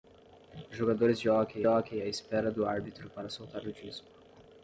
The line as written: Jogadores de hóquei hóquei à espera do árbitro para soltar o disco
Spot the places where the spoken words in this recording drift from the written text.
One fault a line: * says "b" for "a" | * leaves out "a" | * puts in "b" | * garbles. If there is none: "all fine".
all fine